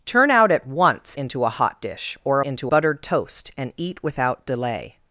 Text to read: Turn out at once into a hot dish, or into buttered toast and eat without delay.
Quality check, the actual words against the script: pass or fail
pass